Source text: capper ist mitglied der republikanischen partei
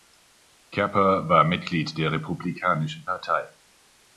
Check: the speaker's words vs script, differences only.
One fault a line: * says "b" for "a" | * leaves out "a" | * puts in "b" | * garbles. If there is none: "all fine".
* says "war" for "ist"